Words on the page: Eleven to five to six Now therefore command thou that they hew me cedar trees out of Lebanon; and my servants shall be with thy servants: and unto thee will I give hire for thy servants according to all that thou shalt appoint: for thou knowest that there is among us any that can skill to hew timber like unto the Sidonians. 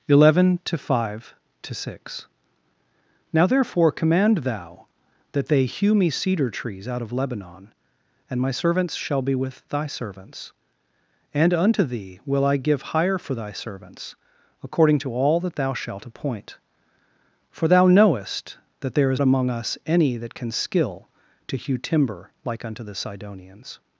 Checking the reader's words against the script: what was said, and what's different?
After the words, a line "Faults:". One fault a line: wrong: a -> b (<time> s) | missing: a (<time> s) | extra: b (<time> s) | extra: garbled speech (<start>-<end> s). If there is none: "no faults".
Eleven to five to six Now therefore command thou that they hew me cedar trees out of Lebanon; and my servants shall be with thy servants: and unto thee will I give hire for thy servants according to all that thou shalt appoint: for thou knowest that there is among us any that can skill to hew timber like unto the Sidonians.
Faults:
no faults